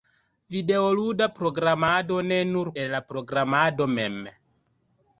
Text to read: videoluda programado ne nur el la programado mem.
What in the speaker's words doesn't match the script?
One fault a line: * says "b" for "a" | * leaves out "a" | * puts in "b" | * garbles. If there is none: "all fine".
all fine